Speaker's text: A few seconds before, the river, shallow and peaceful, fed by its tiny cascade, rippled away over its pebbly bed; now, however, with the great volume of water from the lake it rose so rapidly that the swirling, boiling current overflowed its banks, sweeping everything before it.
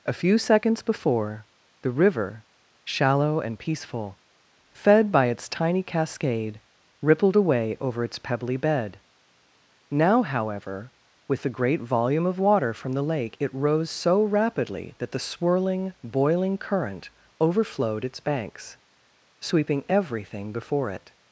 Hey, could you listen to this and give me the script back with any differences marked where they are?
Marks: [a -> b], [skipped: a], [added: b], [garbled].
A few seconds before, the river, shallow and peaceful, fed by its tiny cascade, rippled away over its pebbly bed; now, however, with the great volume of water from the lake it rose so rapidly that the swirling, boiling current overflowed its banks, sweeping everything before it.